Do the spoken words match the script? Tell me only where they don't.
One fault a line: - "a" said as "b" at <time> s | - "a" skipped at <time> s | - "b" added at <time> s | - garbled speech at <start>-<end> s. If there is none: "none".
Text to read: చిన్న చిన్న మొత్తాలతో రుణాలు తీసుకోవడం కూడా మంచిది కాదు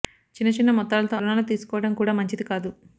none